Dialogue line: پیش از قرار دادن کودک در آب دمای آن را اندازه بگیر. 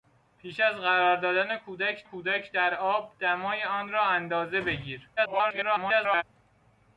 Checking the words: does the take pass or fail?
fail